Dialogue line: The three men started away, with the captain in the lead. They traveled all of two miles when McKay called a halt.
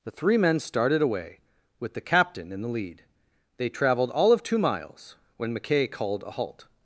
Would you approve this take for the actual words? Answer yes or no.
yes